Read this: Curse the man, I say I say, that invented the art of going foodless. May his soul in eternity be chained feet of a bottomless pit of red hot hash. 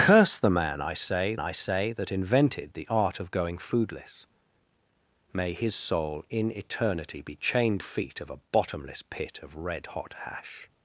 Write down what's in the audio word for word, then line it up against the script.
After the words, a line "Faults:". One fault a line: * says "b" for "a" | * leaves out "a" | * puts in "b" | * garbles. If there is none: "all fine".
Curse the man, I say I say, that invented the art of going foodless. May his soul in eternity be chained feet of a bottomless pit of red hot hash.
Faults:
all fine